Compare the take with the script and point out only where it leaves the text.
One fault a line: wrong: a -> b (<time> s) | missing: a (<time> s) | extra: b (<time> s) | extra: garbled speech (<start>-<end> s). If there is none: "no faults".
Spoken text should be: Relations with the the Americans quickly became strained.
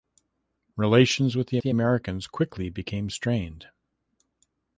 no faults